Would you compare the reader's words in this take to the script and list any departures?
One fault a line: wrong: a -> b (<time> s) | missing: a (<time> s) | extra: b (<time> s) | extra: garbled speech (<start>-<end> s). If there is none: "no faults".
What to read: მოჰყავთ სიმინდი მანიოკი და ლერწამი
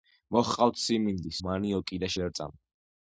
no faults